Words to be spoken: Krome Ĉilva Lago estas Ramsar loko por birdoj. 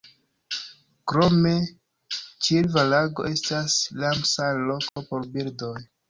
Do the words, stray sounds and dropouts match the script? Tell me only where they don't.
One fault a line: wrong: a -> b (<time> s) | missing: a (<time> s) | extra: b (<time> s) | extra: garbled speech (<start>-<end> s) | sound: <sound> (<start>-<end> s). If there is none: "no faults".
sound: dropout (4.9-5.0 s)